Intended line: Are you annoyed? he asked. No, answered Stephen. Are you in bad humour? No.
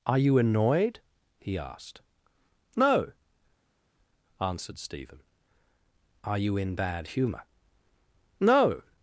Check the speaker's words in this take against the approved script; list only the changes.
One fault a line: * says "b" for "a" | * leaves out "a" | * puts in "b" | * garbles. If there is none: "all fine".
all fine